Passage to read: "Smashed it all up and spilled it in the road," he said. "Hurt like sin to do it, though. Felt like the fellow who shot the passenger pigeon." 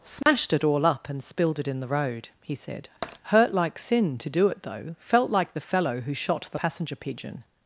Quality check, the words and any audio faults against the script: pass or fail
fail